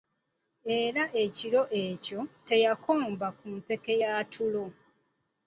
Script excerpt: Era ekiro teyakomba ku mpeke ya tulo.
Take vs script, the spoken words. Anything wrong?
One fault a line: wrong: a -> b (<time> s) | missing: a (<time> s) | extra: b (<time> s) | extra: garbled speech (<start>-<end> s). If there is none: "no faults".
extra: ekyo (1.8 s)